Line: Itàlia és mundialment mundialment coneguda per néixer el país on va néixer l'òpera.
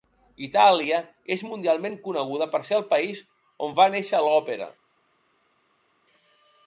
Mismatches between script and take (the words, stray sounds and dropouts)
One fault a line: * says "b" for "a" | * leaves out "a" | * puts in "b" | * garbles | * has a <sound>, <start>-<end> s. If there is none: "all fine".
* leaves out "mundialment"
* says "ser" for "néixer"